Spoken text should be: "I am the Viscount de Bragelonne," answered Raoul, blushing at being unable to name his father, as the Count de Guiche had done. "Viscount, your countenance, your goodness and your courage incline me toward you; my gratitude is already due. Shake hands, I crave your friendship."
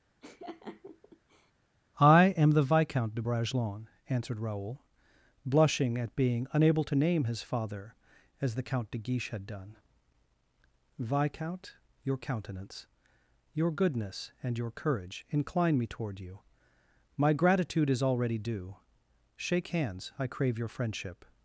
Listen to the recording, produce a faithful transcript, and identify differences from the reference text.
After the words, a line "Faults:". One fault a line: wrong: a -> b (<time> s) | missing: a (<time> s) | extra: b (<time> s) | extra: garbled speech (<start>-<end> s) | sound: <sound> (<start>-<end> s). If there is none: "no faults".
"I am the Viscount de Bragelonne," answered Raoul, blushing at being unable to name his father, as the Count de Guiche had done. "Viscount, your countenance, your goodness and your courage incline me toward you; my gratitude is already due. Shake hands, I crave your friendship."
Faults:
sound: laugh (0.2-1.5 s)